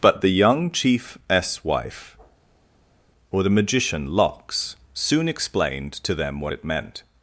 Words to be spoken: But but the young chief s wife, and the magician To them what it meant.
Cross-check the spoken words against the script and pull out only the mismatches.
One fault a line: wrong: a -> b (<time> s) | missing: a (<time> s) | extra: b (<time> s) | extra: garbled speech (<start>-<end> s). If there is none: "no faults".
missing: but (0.2 s)
wrong: and -> or (3.3 s)
extra: Lox soon explained (4.1 s)